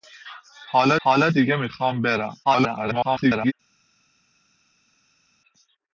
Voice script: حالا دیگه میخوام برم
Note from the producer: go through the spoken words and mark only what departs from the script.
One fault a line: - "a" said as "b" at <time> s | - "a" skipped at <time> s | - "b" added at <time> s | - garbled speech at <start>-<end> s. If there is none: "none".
- "حالا" added at 1.0 s
- garbled speech at 2.4-3.5 s